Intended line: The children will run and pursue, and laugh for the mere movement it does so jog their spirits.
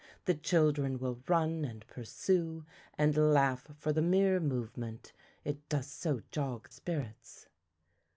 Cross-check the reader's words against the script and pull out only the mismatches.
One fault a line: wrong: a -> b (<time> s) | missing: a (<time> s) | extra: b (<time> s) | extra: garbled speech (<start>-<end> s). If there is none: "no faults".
missing: their (6.7 s)